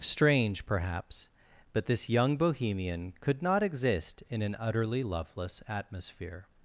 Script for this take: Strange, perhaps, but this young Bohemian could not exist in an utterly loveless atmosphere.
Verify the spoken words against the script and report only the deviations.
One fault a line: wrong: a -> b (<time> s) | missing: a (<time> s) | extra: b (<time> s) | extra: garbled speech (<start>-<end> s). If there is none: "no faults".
no faults